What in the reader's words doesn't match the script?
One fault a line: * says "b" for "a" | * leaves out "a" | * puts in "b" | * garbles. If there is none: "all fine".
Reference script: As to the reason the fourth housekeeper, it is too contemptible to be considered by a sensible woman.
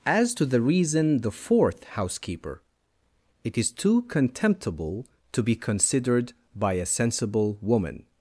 all fine